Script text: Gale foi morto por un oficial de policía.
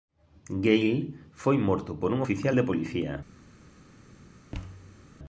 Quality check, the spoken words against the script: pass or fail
pass